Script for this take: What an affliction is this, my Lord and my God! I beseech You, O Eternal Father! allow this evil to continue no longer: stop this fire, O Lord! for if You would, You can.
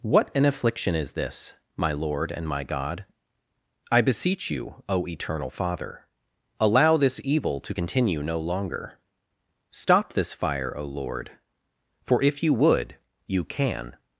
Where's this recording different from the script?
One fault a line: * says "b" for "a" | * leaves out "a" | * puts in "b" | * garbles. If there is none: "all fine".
all fine